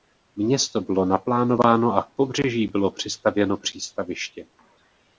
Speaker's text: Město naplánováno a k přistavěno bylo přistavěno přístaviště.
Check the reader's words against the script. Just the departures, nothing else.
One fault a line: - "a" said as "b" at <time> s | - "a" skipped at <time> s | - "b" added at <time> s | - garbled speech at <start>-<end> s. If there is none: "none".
- "bylo" added at 0.8 s
- "přistavěno" said as "pobřeží" at 2.1 s